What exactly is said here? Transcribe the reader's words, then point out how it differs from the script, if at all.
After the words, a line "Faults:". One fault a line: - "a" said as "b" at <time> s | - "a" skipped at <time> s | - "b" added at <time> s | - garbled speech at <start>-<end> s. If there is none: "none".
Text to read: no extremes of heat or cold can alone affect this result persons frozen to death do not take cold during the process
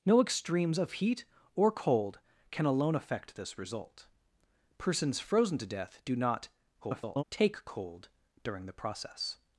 no extremes of heat or cold can alone affect this result persons frozen to death do not [garbled] take cold during the process
Faults:
- garbled speech at 6.8-7.2 s